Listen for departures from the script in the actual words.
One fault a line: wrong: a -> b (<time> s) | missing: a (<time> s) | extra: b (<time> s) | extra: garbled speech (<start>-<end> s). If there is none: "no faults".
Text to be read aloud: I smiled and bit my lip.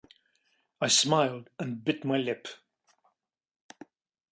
no faults